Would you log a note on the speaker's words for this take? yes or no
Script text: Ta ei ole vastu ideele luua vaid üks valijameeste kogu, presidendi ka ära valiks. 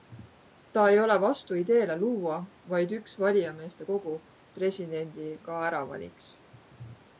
no